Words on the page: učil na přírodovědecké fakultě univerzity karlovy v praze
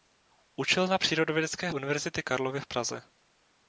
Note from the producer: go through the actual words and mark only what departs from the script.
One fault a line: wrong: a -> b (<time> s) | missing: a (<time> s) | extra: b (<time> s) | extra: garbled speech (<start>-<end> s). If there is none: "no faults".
missing: fakultě (1.7 s)